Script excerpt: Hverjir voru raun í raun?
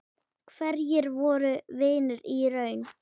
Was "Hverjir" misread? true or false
false